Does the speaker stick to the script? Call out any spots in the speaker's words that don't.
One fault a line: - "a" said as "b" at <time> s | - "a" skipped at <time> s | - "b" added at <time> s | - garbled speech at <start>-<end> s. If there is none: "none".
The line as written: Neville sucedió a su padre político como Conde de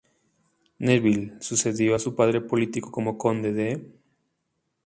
none